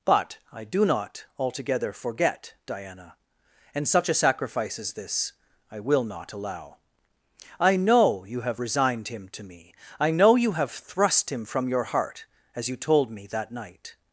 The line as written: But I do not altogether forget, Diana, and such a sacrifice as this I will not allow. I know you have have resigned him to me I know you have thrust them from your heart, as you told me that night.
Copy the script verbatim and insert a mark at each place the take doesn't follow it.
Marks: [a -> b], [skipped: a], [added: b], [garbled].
But I do not altogether forget, Diana, and such a sacrifice as this I will not allow. I know you have [skipped: have] resigned him to me I know you have thrust [them -> him] from your heart, as you told me that night.